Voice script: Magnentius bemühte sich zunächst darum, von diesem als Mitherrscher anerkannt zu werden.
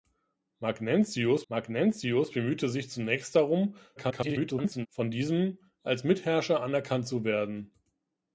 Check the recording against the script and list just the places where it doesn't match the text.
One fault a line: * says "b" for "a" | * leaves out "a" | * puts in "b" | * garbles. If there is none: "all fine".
* puts in "magnentius"
* garbles